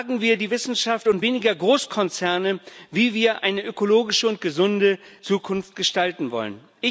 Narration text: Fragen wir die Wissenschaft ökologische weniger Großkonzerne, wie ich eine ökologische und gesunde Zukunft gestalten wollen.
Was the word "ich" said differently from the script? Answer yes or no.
yes